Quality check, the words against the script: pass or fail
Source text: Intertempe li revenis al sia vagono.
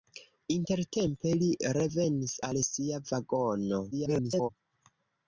fail